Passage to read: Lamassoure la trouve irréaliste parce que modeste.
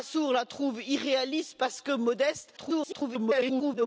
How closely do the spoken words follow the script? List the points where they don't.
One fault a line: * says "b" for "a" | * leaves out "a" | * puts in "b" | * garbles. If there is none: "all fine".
* garbles